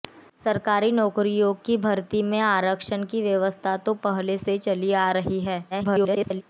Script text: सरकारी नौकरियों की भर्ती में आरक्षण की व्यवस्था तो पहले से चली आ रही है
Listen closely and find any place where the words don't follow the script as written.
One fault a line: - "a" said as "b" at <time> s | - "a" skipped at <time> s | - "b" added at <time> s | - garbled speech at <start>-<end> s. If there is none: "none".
- garbled speech at 5.7-6.4 s